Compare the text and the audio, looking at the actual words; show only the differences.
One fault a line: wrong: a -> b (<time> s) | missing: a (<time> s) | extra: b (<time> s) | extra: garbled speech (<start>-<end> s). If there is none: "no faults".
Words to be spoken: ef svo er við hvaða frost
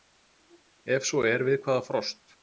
no faults